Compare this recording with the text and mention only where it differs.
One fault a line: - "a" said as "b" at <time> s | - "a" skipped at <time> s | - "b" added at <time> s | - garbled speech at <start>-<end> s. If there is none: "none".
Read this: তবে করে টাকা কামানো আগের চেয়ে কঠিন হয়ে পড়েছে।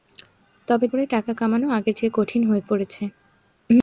none